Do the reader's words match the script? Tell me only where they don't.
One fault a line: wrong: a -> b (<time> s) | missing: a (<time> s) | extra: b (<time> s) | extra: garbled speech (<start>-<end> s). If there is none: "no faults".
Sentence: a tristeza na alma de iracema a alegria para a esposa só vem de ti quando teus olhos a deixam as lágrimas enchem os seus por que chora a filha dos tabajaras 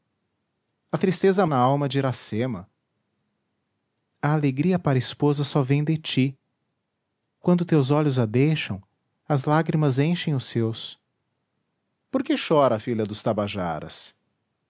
no faults